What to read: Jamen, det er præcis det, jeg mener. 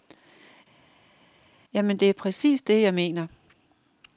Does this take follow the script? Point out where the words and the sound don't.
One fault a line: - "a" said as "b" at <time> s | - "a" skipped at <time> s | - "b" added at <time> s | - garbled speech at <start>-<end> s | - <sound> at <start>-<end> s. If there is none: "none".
none